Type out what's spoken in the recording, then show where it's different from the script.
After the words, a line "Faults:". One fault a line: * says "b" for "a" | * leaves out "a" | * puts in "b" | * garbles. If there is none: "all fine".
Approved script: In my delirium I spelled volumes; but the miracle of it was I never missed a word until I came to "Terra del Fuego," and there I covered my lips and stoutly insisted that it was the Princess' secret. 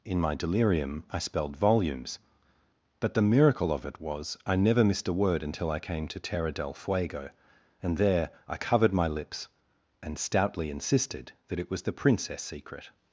In my delirium I spelled volumes; but the miracle of it was I never missed a word until I came to "Terra del Fuego," and there I covered my lips and stoutly insisted that it was the Princess' secret.
Faults:
all fine